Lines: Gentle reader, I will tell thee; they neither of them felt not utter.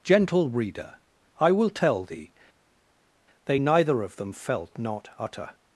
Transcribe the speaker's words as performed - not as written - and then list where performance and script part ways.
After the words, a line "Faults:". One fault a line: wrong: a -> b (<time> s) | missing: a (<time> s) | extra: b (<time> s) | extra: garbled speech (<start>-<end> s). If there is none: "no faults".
Gentle reader, I will tell thee; they neither of them felt not utter.
Faults:
no faults